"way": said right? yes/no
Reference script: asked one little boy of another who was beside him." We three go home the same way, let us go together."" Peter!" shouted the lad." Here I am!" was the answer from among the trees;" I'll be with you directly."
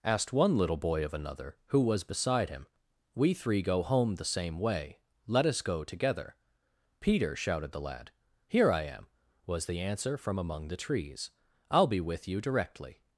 yes